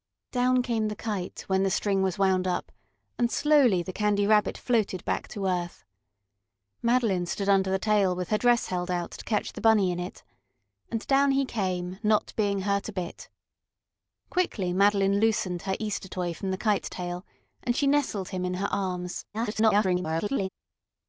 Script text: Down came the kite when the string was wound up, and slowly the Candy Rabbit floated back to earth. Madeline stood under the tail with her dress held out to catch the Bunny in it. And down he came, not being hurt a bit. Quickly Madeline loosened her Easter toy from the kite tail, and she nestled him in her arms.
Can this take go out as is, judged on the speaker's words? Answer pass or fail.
fail